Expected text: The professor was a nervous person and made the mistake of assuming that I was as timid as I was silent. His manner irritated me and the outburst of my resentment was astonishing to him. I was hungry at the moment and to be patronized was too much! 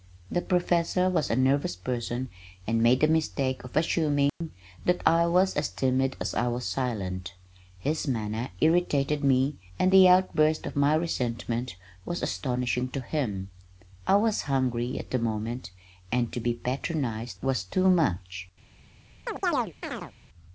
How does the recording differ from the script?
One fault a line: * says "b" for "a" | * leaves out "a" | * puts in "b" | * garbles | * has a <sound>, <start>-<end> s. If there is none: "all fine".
* has a dropout, 4.3-4.4 s
* has a chirp, 19.3-20.1 s